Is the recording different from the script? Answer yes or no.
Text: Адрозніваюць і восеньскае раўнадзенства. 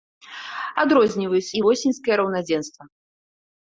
no